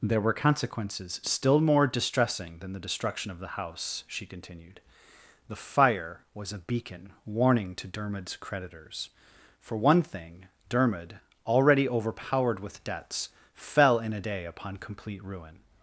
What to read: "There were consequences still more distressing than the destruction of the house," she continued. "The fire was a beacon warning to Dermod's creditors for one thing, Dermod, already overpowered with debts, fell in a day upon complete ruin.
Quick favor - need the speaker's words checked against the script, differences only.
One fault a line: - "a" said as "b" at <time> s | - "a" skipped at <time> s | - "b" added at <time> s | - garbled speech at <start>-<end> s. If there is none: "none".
none